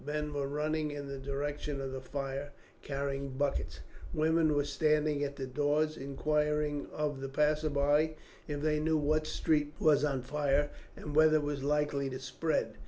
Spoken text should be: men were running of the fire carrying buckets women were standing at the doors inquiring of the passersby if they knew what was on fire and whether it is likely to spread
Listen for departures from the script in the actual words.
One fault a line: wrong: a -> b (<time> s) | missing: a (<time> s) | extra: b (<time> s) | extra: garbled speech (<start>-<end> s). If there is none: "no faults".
extra: in the direction (0.9 s)
extra: street (9.3 s)
wrong: is -> was (11.4 s)